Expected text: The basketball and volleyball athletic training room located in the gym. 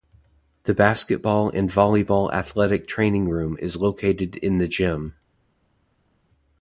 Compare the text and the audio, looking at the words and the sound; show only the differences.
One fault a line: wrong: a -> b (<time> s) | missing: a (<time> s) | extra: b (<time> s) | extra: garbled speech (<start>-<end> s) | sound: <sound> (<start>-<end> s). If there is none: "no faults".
extra: is (3.6 s)